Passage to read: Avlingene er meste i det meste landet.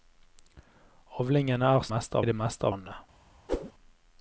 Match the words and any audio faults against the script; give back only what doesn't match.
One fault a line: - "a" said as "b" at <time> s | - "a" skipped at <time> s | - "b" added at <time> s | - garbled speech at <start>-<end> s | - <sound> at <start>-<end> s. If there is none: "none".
- whoosh at 3.5-3.7 s